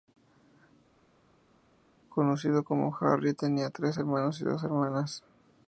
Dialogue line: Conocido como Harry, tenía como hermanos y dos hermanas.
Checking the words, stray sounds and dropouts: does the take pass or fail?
fail